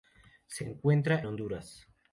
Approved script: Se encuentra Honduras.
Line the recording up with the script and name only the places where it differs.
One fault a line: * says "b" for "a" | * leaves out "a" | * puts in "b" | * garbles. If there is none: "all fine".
all fine